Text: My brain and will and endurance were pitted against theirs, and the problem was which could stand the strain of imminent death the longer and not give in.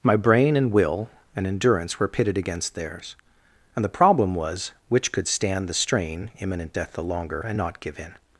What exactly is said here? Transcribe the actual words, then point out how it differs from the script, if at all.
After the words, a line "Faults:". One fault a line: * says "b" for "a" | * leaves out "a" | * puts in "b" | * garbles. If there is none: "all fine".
My brain and will and endurance were pitted against theirs, and the problem was which could stand the strain imminent death the longer and not give in.
Faults:
* leaves out "of"